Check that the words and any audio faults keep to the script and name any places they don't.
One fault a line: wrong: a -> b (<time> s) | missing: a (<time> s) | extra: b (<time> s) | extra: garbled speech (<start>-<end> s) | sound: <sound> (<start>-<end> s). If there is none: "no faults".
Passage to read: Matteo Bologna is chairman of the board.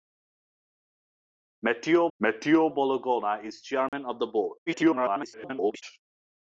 extra: matteo (2.2 s)
sound: dropout (3.9-3.9 s)
extra: garbled speech (4.7-5.8 s)